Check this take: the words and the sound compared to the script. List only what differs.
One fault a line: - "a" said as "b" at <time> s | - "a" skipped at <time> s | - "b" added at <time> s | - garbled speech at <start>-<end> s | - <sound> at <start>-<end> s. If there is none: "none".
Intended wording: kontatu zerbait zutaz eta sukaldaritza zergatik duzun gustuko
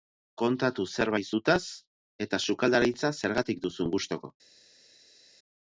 none